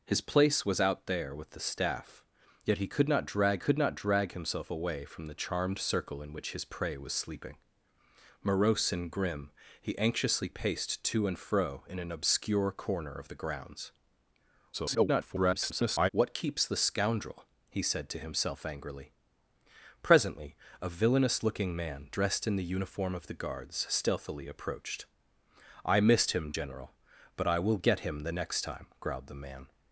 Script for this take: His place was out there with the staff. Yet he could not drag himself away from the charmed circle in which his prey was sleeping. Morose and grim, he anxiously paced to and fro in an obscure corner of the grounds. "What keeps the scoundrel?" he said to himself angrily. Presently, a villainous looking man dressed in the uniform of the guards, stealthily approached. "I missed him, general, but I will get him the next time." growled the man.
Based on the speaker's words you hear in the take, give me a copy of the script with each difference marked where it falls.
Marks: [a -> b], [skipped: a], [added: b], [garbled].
His place was out there with the staff. Yet he could not drag [added: could not drag] himself away from the charmed circle in which his prey was sleeping. Morose and grim, he anxiously paced to and fro in an obscure corner of the grounds. [garbled] "What keeps the scoundrel?" he said to himself angrily. Presently, a villainous looking man dressed in the uniform of the guards, stealthily approached. "I missed him, general, but I will get him the next time." growled the man.